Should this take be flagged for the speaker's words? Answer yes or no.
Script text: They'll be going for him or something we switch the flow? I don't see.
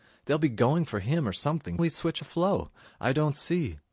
no